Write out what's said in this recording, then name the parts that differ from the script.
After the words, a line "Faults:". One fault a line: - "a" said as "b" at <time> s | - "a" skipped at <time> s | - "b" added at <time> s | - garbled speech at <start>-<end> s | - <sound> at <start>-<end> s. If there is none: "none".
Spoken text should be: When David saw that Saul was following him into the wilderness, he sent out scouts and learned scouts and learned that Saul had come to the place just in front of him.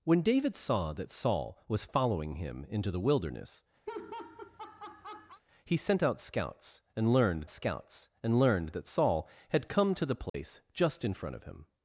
When David saw that Saul was following him into the wilderness, he sent out scouts and learned scouts and learned that Saul had come to the place just in front of him.
Faults:
- laugh at 3.9-5.4 s
- dropout at 10.3-10.3 s